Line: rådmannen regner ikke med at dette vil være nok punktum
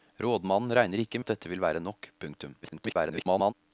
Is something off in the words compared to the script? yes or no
yes